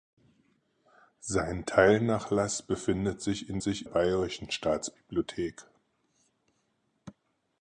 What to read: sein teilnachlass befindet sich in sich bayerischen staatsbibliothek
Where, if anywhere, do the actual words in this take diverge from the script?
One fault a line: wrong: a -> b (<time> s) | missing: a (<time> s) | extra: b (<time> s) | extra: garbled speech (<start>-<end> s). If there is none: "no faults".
no faults